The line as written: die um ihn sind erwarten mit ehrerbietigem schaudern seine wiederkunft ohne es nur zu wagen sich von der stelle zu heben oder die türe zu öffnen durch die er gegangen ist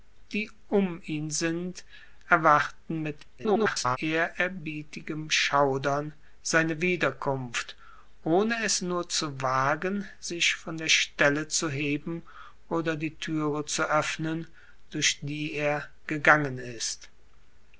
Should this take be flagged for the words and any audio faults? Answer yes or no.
yes